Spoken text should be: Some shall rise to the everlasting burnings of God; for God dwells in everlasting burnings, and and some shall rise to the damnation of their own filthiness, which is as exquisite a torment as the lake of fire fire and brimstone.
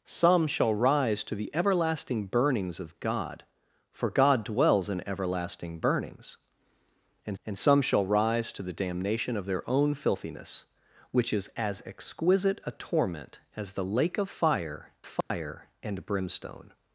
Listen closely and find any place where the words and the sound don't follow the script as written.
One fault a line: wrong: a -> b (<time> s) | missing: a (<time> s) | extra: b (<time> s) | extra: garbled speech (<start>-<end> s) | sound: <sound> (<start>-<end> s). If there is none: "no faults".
sound: dropout (15.2-15.3 s)